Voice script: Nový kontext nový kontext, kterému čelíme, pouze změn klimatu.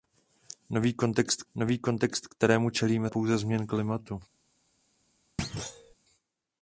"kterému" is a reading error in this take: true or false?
false